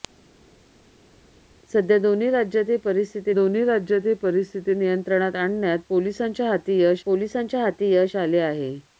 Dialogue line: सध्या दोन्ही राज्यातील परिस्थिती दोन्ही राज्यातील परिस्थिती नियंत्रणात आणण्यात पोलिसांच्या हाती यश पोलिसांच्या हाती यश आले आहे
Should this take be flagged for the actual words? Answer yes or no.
no